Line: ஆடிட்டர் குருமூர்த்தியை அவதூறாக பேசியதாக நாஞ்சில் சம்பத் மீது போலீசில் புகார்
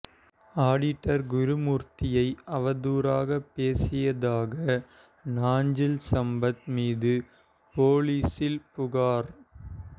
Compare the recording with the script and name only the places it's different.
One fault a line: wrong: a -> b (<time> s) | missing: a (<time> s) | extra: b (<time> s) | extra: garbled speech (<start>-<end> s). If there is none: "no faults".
no faults